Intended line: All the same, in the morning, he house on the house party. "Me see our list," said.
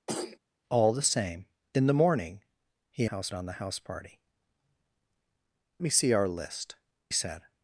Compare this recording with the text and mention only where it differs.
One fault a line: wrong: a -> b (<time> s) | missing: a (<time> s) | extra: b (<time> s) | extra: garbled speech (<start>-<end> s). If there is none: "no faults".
no faults